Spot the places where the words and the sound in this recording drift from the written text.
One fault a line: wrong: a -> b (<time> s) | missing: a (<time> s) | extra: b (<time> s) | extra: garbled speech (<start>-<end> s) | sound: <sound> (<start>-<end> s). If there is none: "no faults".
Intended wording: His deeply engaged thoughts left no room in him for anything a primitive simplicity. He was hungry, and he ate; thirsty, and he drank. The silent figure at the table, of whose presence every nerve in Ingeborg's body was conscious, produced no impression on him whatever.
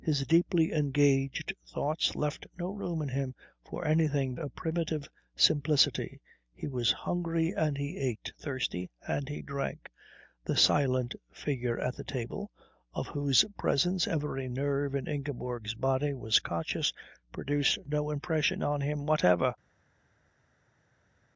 no faults